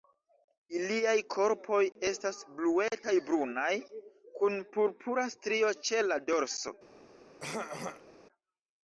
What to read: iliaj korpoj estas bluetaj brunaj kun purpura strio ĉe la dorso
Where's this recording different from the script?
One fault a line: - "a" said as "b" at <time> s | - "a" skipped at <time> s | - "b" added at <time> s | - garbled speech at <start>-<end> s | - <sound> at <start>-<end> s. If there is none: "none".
- throat clearing at 7.4-8.1 s